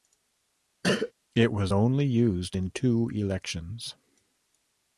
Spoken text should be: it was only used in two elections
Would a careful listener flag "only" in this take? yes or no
no